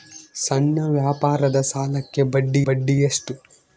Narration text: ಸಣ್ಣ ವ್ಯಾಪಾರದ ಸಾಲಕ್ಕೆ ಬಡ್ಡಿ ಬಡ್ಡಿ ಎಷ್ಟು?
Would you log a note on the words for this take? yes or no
no